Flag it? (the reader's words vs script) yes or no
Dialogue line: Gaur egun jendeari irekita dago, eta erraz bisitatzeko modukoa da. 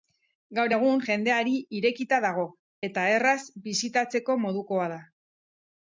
no